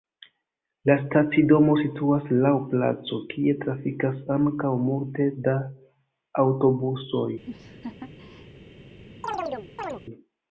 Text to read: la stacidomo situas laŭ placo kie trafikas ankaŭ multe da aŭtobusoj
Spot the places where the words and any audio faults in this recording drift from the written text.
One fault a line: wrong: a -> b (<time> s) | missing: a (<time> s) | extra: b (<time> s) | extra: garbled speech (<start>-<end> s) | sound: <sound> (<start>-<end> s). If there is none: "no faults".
sound: laugh (7.4-8.5 s)
sound: chirp (9.2-10.0 s)